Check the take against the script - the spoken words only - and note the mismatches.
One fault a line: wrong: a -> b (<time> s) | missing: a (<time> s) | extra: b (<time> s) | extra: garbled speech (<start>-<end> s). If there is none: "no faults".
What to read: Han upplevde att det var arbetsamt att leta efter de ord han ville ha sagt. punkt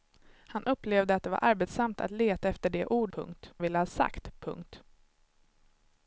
wrong: han -> punkt (3.1 s)